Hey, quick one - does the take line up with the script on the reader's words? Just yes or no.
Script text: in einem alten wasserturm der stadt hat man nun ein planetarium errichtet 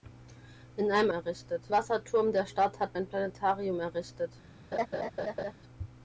no